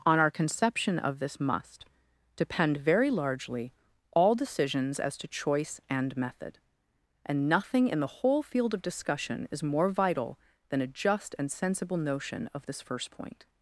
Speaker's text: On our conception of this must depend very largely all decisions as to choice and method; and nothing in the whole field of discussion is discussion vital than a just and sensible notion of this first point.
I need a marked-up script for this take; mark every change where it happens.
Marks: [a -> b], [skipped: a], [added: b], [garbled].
On our conception of this must depend very largely all decisions as to choice and method; and nothing in the whole field of discussion is [discussion -> more] vital than a just and sensible notion of this first point.